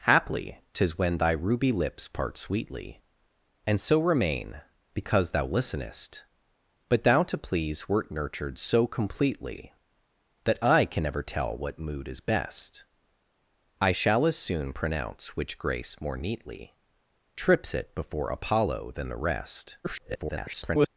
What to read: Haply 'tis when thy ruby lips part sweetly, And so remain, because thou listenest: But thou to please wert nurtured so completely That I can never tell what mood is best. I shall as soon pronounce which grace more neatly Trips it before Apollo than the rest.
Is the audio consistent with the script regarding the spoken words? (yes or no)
no